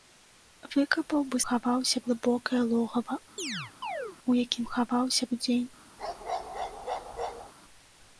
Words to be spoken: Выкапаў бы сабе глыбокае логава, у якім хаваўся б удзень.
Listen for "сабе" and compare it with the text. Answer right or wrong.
wrong